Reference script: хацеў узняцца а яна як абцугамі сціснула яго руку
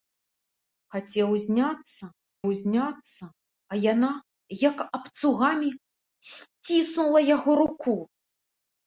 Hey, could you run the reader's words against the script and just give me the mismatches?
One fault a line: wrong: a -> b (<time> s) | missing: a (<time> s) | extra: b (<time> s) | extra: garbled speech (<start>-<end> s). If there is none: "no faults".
extra: узняцца (2.5 s)